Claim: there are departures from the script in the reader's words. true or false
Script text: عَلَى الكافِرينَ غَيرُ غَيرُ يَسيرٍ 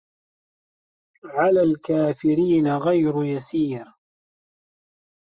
true